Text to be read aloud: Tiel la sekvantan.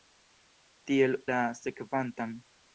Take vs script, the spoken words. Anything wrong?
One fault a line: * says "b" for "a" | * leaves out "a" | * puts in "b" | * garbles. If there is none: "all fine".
all fine